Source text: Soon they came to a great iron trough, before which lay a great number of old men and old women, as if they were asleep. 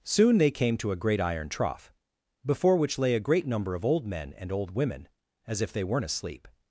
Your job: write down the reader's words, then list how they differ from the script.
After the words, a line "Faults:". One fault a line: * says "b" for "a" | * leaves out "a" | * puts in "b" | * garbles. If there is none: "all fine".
Soon they came to a great iron trough, before which lay a great number of old men and old women, as if they weren't asleep.
Faults:
* says "weren't" for "were"